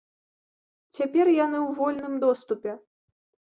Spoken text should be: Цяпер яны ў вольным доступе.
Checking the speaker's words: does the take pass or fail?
pass